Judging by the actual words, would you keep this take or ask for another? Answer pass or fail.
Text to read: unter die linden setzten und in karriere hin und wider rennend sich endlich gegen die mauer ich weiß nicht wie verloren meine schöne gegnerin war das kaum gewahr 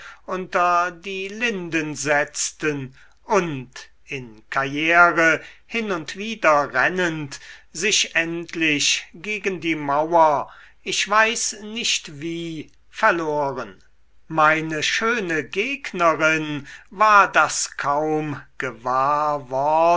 pass